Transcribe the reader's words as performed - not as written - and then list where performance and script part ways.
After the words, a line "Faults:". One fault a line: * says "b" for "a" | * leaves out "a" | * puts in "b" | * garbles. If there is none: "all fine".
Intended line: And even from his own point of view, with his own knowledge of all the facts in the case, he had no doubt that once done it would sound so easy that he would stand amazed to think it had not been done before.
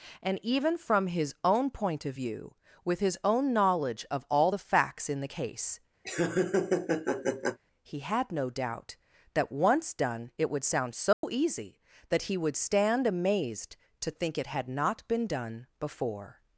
And even from his own point of view, with his own knowledge of all the facts in the case, he had no doubt that once done it would sound so easy that he would stand amazed to think it had not been done before.
Faults:
all fine